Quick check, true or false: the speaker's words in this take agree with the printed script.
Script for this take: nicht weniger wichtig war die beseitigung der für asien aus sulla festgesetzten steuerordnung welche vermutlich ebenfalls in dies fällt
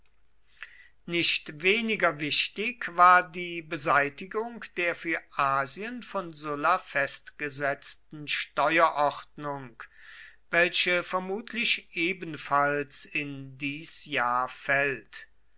false